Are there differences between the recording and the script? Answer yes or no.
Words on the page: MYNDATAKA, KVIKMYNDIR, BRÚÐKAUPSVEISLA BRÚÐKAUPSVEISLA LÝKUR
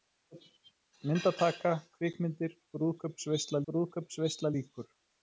no